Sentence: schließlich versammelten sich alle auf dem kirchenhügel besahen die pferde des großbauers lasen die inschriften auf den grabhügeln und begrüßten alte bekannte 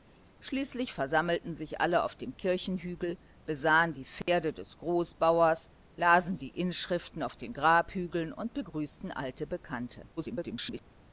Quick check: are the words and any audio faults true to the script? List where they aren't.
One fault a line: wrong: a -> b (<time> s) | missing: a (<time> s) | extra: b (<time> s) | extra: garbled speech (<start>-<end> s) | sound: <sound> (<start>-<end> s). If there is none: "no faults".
sound: dropout (4.2-4.3 s)
extra: garbled speech (10.2-10.8 s)